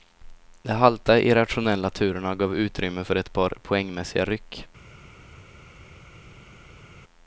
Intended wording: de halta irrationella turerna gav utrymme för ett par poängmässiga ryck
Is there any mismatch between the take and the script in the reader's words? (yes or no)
no